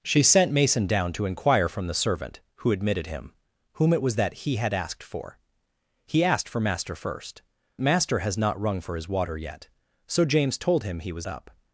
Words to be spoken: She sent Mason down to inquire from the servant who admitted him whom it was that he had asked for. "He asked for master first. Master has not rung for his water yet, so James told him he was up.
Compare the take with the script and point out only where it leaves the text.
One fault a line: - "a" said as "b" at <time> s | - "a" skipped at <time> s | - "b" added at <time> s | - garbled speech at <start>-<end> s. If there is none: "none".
none